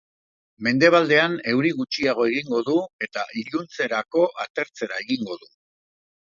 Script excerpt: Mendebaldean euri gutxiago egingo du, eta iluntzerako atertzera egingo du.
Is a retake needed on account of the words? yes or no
no